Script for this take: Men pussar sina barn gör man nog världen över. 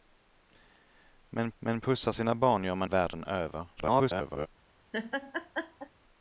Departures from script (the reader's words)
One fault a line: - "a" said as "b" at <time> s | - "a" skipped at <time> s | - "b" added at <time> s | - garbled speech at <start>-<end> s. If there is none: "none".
- "men" added at 1.6 s
- "nog" skipped at 2.9 s
- garbled speech at 3.8-4.5 s